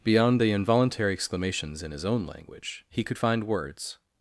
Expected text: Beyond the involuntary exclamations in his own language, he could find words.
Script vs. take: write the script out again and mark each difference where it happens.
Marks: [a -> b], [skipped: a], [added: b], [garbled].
Beyond the involuntary exclamations in his own language, he could find words.